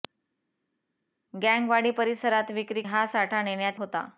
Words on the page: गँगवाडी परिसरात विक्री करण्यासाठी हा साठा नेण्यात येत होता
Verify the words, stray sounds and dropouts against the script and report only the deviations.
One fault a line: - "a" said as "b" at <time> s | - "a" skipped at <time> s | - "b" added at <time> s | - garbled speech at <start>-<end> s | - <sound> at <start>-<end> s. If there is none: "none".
- "करण्यासाठी" skipped at 2.8 s
- "येत" skipped at 3.8 s